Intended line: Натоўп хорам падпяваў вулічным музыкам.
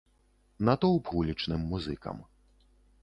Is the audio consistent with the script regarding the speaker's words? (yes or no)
no